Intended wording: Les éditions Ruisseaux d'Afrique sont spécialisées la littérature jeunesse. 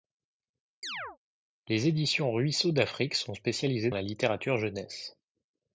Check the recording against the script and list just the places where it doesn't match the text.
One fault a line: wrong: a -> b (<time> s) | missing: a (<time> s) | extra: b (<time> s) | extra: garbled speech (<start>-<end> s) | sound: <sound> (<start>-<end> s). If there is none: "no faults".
sound: chirp (0.8-1.2 s)